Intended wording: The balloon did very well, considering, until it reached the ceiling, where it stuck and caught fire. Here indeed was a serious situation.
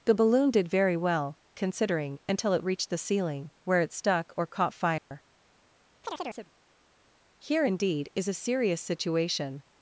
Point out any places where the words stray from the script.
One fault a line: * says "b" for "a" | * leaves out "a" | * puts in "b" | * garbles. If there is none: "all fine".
* says "or" for "and"
* says "is" for "was"